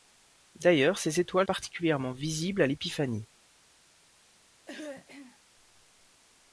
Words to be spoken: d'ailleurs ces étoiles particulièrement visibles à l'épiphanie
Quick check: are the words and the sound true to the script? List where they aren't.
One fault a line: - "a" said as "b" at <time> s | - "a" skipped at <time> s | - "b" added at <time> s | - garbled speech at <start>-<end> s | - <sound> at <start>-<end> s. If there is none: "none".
- throat clearing at 4.7-5.4 s